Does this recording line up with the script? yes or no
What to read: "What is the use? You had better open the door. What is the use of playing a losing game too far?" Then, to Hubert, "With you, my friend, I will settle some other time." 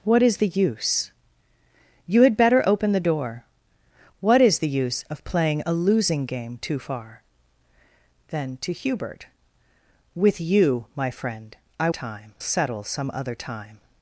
no